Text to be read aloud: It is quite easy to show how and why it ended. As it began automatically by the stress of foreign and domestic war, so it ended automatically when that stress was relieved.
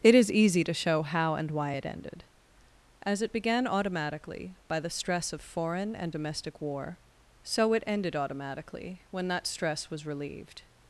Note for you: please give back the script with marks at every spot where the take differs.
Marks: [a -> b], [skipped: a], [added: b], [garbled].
It is [skipped: quite] easy to show how and why it ended. As it began automatically by the stress of foreign and domestic war, so it ended automatically when that stress was relieved.